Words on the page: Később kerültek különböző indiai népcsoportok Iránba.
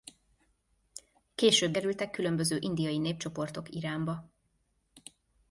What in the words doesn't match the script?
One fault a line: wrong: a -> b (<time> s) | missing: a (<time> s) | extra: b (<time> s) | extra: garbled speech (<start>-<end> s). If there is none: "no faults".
no faults